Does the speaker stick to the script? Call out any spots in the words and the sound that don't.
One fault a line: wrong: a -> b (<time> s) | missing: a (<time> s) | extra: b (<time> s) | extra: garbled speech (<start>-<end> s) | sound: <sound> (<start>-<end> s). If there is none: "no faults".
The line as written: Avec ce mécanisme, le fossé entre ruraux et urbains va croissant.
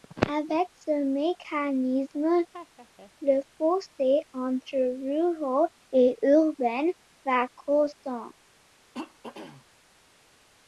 sound: laugh (2.5-3.1 s)
sound: throat clearing (8.9-9.7 s)